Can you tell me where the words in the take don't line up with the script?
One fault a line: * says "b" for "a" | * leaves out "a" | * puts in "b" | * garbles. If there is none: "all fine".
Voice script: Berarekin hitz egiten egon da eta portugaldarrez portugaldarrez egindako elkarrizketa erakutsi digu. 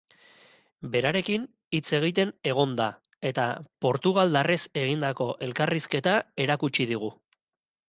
* leaves out "portugaldarrez"